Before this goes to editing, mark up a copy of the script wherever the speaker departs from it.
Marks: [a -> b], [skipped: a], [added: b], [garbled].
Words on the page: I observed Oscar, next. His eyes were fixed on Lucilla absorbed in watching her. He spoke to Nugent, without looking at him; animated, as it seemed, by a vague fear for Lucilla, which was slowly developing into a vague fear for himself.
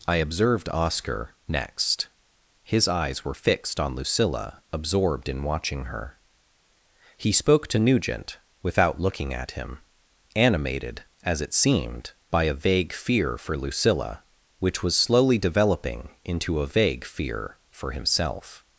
I observed Oscar, next. His eyes were fixed on Lucilla absorbed in watching her. He spoke to Nugent, without looking at him; animated, as it seemed, by a vague fear for Lucilla, which was slowly developing into a vague fear for himself.